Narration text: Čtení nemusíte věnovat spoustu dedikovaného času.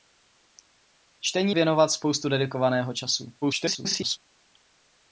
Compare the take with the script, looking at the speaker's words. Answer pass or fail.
fail